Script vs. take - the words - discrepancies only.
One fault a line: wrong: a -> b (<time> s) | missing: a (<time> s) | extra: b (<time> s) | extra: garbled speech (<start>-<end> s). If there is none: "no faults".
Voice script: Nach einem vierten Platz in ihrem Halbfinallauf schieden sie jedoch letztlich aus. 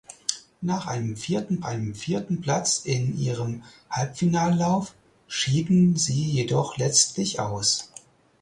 extra: einem vierten (1.6 s)